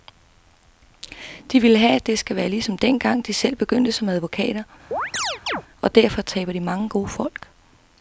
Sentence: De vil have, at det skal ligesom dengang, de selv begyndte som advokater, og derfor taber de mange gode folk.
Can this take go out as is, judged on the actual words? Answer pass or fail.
fail